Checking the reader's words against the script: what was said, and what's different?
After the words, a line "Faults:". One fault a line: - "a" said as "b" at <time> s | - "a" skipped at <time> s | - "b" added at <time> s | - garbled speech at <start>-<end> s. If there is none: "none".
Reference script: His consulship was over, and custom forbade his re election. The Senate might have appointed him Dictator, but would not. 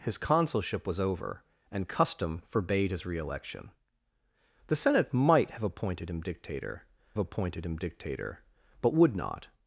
His consulship was over, and custom forbade his re election. The Senate might have appointed him Dictator appointed him Dictator, but would not.
Faults:
- "appointed him Dictator" added at 7.2 s